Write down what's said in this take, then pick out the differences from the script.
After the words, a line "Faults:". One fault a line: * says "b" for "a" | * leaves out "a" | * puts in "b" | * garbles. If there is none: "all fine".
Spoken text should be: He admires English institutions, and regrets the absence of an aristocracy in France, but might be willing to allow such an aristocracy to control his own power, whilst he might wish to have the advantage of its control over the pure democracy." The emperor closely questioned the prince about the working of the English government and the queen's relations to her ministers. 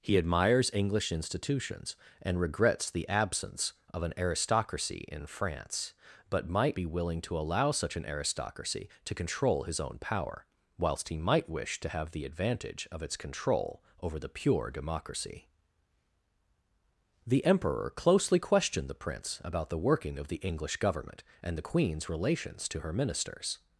He admires English institutions, and regrets the absence of an aristocracy in France, but might be willing to allow such an aristocracy to control his own power, whilst he might wish to have the advantage of its control over the pure democracy." The emperor closely questioned the prince about the working of the English government and the queen's relations to her ministers.
Faults:
all fine